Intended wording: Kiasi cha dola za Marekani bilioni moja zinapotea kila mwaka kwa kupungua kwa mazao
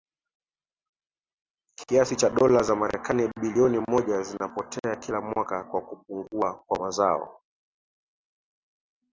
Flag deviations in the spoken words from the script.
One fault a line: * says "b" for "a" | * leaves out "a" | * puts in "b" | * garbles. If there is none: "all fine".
all fine